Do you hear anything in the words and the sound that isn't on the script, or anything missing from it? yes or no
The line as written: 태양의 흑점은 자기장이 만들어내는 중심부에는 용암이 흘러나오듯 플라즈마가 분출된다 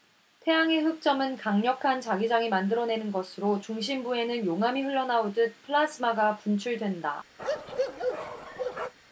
yes